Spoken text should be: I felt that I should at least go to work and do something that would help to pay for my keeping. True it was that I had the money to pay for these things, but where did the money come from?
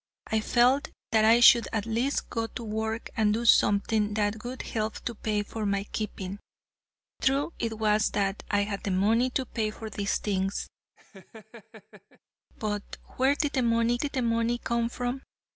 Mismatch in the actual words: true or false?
true